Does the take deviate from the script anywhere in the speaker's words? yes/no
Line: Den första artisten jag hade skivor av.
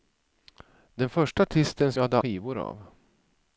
no